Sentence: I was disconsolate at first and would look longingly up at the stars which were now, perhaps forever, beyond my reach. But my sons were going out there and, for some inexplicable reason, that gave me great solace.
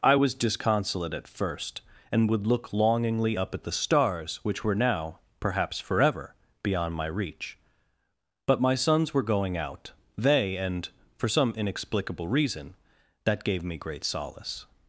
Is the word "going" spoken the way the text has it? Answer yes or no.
yes